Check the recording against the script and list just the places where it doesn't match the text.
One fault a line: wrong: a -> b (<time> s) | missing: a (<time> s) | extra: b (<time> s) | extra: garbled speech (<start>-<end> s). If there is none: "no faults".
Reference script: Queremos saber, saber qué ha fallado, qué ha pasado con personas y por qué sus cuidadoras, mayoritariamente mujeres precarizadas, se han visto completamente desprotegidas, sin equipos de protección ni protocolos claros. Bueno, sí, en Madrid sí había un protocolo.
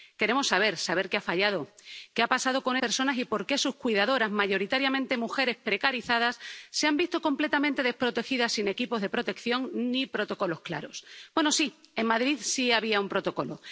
no faults